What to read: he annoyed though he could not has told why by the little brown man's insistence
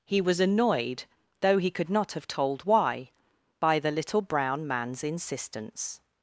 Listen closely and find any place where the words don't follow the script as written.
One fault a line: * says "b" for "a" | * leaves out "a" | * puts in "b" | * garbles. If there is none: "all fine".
* puts in "was"
* says "have" for "has"